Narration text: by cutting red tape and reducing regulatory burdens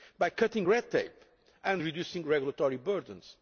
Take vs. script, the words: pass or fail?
pass